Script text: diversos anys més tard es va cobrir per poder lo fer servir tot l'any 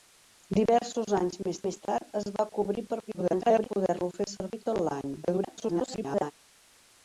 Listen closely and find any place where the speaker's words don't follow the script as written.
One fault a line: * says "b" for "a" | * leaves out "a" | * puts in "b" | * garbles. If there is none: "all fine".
* puts in "més"
* garbles
* garbles